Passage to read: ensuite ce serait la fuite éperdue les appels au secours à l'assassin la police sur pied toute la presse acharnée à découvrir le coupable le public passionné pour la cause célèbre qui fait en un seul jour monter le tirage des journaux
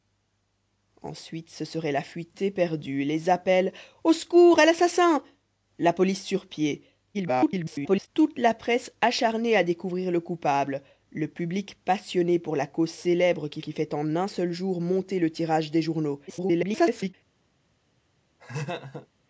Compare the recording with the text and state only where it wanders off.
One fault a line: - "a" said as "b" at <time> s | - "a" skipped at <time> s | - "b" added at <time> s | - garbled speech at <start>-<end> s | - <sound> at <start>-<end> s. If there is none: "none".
- garbled speech at 7.1-8.1 s
- "qui" added at 13.6 s
- garbled speech at 16.3-17.1 s
- laugh at 18.4-19.1 s